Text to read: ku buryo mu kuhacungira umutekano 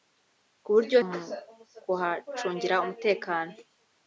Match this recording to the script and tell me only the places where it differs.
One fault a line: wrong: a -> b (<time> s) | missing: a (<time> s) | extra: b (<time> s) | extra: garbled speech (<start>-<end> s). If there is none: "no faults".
no faults